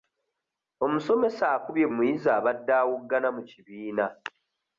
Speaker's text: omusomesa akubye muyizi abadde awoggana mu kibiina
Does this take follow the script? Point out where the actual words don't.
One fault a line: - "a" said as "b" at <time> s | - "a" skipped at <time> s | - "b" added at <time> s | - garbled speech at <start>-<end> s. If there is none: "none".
none